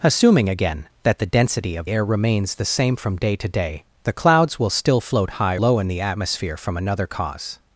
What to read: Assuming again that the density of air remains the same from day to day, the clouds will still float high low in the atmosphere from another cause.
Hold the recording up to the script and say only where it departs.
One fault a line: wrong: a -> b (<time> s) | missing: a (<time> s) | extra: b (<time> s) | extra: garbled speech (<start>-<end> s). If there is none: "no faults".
no faults